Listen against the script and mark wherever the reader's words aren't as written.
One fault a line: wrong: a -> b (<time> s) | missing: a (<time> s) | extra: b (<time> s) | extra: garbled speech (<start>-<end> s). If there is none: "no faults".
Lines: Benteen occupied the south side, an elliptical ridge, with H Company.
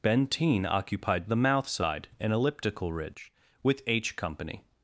wrong: south -> mouth (1.4 s)